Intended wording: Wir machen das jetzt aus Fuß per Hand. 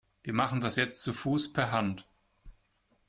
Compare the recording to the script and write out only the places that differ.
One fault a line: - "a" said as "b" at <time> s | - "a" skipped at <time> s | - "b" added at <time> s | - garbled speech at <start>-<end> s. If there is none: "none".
- "aus" said as "zu" at 1.0 s